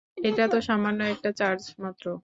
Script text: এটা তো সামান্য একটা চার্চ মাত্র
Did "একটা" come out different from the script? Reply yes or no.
no